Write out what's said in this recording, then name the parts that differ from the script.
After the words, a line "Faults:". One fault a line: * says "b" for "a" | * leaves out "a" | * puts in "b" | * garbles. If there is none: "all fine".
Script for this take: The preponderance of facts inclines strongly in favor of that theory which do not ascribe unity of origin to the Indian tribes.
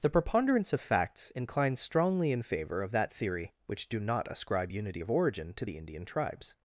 The preponderance of facts inclines strongly in favor of that theory which do not ascribe unity of origin to the Indian tribes.
Faults:
all fine